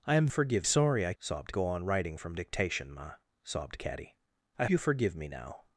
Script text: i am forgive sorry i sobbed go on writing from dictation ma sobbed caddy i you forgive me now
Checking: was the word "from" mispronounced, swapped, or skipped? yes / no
no